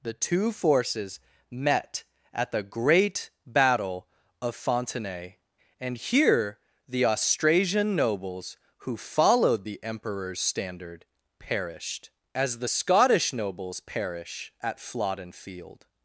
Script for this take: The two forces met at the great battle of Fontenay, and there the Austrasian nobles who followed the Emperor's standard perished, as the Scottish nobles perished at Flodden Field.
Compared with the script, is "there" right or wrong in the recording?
wrong